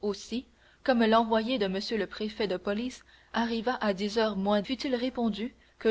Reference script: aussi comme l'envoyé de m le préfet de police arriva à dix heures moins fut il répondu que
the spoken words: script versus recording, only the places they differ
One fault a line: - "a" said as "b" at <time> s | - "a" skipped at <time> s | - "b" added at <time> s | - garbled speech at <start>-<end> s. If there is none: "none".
none